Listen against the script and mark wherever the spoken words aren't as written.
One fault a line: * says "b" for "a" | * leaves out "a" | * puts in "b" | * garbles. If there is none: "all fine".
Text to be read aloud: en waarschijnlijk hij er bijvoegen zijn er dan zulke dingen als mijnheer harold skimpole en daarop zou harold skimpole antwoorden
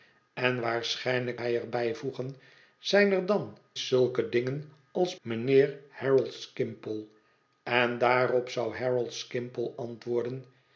all fine